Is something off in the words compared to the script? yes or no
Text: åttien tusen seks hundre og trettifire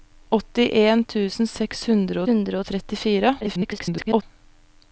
yes